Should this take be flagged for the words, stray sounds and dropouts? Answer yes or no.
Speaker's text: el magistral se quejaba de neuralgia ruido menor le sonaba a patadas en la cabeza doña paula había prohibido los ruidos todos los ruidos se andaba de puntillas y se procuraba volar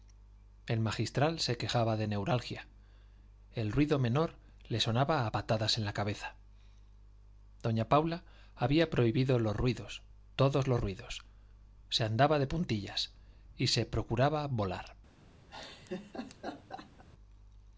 yes